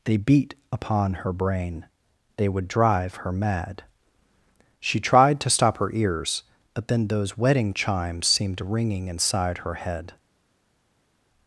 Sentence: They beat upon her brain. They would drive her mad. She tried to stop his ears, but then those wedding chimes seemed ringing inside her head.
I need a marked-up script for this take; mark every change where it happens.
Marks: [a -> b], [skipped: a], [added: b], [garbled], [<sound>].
They beat upon her brain. They would drive her mad. She tried to stop [his -> her] ears, but then those wedding chimes seemed ringing inside her head.